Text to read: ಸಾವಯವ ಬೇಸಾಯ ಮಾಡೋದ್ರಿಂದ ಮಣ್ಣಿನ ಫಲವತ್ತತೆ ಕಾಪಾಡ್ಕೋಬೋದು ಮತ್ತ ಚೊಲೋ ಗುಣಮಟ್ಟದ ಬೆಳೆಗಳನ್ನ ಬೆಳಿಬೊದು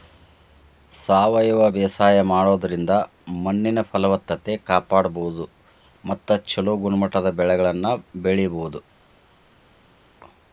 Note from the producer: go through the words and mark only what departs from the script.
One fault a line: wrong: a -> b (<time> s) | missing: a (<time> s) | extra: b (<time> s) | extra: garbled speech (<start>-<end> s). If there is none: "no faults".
no faults